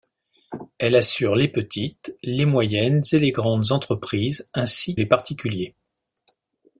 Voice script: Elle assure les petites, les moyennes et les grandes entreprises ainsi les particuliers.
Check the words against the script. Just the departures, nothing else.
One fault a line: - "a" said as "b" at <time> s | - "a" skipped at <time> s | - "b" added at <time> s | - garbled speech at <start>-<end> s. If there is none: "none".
none